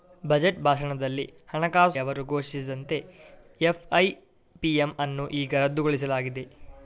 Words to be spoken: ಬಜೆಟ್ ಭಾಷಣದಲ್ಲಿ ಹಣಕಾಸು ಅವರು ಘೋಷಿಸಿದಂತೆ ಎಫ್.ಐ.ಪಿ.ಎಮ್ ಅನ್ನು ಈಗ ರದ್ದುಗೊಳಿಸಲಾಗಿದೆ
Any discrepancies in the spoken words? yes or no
no